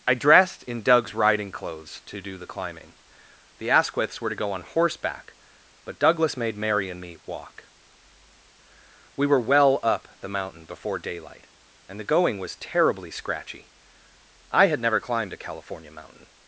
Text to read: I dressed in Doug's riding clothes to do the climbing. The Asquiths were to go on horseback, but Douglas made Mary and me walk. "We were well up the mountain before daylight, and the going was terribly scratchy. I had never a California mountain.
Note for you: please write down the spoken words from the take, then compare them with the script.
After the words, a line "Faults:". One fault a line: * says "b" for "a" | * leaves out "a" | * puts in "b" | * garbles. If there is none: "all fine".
I dressed in Doug's riding clothes to do the climbing. The Asquiths were to go on horseback, but Douglas made Mary and me walk. "We were well up the mountain before daylight, and the going was terribly scratchy. I had never climbed a California mountain.
Faults:
* puts in "climbed"